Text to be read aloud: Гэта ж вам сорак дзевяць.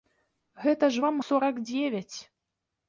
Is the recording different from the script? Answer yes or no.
no